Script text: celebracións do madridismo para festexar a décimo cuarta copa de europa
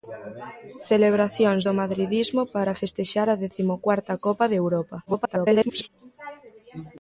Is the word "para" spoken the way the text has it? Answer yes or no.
yes